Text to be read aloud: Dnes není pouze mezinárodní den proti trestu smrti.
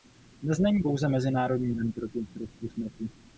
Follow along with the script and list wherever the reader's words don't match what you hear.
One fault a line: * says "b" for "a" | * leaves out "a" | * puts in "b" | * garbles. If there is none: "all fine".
all fine